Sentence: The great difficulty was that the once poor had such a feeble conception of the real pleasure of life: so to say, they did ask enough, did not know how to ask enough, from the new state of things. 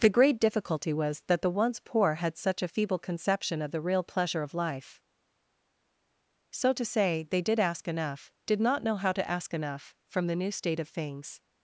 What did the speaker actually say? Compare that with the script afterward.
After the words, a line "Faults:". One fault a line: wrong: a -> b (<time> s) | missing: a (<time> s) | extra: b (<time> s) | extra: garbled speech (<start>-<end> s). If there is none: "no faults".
The great difficulty was that the once poor had such a feeble conception of the real pleasure of life: so to say, they did ask enough, did not know how to ask enough, from the new state of things.
Faults:
no faults